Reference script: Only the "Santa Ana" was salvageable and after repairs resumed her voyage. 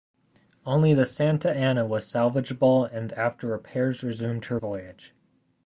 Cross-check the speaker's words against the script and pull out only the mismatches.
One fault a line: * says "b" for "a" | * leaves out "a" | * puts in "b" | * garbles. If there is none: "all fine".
all fine